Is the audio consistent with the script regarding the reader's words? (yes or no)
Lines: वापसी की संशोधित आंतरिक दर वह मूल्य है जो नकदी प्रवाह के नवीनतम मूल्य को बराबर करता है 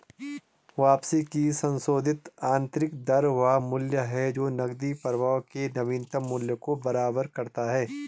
yes